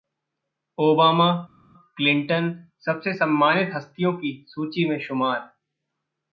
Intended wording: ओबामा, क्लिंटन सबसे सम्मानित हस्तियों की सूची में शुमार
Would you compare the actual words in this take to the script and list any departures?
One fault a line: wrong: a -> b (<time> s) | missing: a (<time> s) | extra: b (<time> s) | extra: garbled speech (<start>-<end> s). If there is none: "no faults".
no faults